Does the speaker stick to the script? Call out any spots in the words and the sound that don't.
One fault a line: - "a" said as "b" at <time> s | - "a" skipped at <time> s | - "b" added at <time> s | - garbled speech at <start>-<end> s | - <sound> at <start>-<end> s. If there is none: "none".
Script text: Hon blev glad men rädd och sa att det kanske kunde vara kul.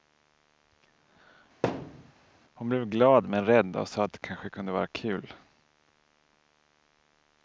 - thud at 1.6-2.1 s